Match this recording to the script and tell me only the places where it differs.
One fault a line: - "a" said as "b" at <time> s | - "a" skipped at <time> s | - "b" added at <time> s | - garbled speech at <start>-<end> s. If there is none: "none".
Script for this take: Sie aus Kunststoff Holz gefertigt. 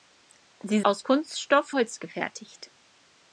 none